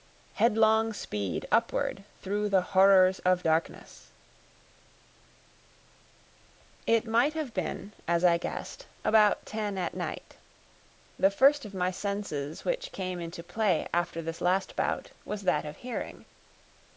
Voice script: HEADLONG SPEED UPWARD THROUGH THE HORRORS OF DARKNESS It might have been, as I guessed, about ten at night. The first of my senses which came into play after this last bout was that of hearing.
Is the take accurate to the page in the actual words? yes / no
yes